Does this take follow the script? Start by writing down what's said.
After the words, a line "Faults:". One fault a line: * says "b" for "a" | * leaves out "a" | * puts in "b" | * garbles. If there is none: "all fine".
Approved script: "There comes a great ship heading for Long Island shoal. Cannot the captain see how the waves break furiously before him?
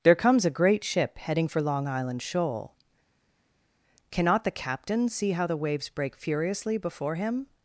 "There comes a great ship heading for Long Island shoal. Cannot the captain see how the waves break furiously before him?
Faults:
all fine